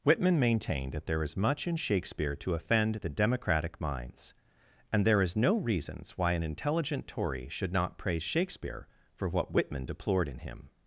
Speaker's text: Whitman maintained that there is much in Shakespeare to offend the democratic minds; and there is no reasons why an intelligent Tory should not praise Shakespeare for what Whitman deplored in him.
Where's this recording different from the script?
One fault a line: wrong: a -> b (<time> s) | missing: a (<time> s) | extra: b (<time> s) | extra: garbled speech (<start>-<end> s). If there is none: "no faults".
no faults